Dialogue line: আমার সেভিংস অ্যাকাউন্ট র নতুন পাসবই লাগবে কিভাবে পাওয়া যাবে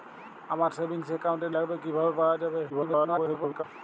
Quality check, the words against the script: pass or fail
fail